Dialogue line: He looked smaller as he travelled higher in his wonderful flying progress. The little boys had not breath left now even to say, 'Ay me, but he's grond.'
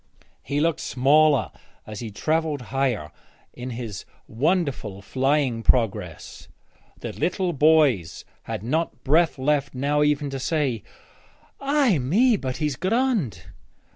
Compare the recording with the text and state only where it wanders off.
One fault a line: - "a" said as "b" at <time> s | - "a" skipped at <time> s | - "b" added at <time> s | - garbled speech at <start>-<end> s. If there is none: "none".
none